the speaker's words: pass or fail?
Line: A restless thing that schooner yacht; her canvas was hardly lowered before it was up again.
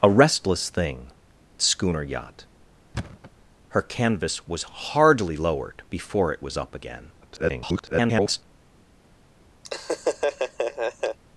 fail